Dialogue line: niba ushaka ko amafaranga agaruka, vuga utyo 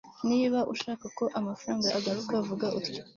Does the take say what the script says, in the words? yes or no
yes